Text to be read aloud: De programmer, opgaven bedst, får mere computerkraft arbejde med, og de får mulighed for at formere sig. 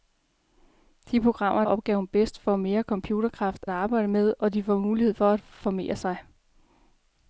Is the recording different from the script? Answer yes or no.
no